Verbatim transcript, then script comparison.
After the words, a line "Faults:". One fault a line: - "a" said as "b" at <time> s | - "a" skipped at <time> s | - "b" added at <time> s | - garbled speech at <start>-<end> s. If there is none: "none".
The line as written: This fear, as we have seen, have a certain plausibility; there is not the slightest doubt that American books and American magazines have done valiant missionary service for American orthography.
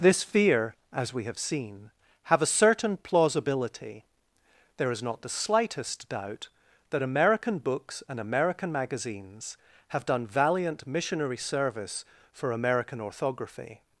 This fear, as we have seen, have a certain plausibility; there is not the slightest doubt that American books and American magazines have done valiant missionary service for American orthography.
Faults:
none